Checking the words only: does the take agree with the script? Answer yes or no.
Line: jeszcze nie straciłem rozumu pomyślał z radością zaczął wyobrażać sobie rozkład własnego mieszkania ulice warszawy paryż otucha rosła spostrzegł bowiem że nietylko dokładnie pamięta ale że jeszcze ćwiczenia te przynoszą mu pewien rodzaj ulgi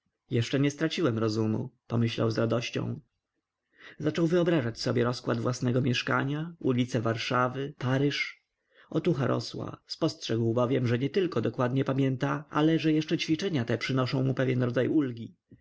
yes